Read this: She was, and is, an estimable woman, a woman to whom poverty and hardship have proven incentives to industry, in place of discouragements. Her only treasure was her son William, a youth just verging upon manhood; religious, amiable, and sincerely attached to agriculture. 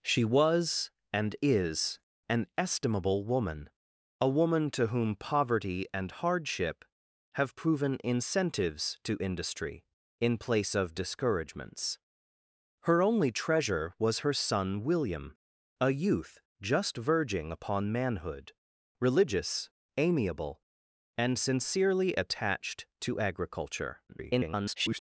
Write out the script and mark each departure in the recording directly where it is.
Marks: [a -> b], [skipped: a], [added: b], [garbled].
She was, and is, an estimable woman, a woman to whom poverty and hardship have proven incentives to industry, in place of discouragements. Her only treasure was her son William, a youth just verging upon manhood; religious, amiable, and sincerely attached to agriculture. [garbled]